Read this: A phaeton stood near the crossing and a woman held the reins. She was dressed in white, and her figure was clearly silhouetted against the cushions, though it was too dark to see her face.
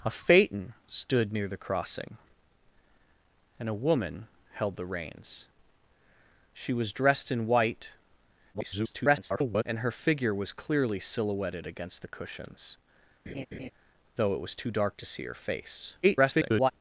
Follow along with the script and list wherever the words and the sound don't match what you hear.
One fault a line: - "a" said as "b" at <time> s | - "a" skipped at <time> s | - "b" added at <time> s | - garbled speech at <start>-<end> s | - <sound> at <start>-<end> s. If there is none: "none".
- garbled speech at 8.5-9.6 s
- laugh at 13.3-13.7 s
- garbled speech at 16.0-16.7 s